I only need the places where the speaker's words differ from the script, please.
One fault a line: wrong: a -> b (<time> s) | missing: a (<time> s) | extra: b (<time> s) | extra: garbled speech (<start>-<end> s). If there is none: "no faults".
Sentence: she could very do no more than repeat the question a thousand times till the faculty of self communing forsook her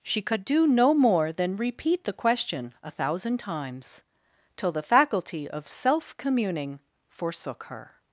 missing: very (0.4 s)